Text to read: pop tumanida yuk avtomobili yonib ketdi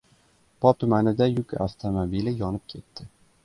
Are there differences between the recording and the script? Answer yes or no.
no